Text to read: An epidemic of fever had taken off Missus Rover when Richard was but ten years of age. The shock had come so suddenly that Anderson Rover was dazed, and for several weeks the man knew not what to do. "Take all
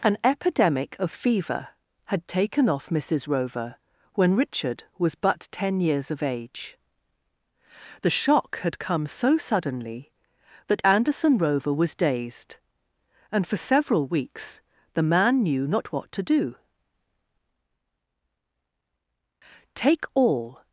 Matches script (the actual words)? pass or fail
pass